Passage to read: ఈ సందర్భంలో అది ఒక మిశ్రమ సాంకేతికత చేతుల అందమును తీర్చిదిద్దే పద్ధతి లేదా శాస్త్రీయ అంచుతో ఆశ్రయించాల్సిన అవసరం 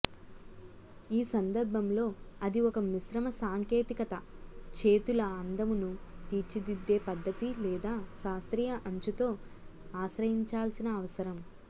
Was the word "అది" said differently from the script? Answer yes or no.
no